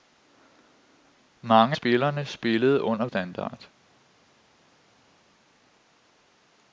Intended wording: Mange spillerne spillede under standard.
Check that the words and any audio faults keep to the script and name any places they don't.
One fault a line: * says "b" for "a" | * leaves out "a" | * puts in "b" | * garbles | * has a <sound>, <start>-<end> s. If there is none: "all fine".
all fine